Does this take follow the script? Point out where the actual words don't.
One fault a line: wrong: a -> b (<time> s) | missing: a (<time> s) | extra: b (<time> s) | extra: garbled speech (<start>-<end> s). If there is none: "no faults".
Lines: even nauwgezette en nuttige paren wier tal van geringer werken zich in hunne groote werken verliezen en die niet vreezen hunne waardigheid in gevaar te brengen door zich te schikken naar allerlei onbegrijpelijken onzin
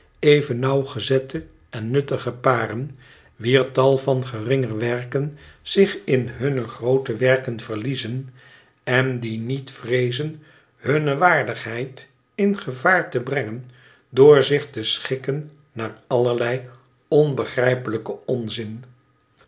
no faults